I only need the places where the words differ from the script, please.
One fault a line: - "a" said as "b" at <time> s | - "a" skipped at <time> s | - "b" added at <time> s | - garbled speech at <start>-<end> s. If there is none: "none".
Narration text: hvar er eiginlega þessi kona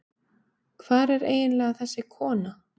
none